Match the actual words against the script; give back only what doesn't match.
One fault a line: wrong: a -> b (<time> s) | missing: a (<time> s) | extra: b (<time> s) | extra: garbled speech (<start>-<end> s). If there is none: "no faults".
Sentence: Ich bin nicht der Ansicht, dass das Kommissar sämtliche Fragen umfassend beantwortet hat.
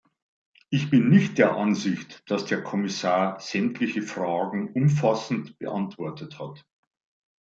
wrong: das -> der (2.5 s)